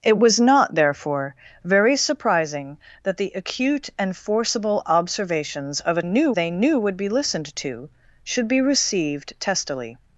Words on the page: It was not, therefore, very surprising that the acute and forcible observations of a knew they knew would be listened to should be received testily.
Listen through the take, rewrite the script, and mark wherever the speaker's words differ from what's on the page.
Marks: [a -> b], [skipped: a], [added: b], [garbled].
It was not, therefore, very surprising that the acute and forcible observations of a knew they knew would be listened to should be received testily.